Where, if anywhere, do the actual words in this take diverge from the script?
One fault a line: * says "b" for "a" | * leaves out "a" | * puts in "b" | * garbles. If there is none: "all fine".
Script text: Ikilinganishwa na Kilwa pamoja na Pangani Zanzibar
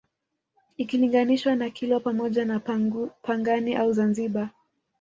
* puts in "au"